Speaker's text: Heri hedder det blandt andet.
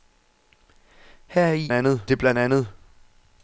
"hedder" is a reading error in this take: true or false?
true